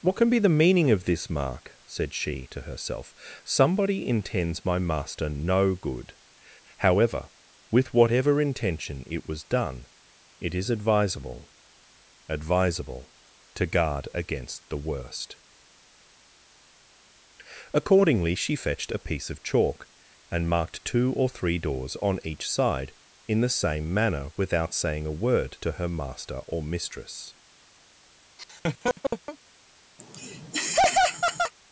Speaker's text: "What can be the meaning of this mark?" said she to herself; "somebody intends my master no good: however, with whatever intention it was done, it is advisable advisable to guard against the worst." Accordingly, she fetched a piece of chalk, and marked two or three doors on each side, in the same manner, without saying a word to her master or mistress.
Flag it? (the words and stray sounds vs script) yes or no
yes